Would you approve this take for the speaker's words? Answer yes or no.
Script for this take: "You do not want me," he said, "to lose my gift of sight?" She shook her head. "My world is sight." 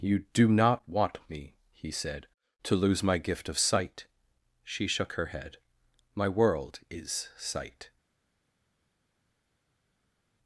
yes